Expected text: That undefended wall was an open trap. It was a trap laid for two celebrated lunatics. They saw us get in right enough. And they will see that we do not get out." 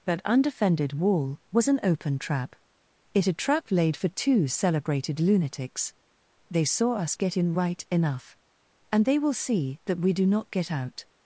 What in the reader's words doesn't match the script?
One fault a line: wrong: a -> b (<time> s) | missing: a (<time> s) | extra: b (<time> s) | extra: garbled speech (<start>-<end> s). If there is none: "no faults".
missing: was (3.3 s)